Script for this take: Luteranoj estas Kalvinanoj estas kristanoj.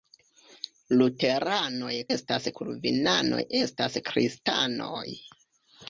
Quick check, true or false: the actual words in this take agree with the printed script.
true